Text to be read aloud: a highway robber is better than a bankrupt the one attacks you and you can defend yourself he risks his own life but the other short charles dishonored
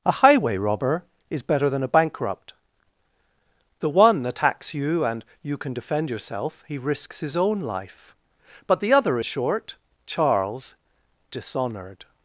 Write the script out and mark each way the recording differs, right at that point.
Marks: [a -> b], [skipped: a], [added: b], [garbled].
a highway robber is better than a bankrupt the one attacks you and you can defend yourself he risks his own life but the other short charles dishonored